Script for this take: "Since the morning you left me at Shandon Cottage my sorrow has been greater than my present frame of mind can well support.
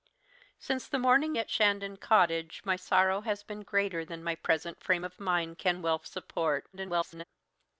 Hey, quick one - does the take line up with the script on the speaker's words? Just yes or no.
no